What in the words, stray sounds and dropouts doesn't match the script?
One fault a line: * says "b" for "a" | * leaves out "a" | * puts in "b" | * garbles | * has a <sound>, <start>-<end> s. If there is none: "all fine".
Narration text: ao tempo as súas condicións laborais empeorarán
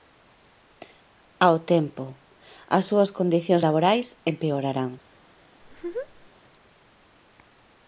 * has a laugh, 5.6-6.3 s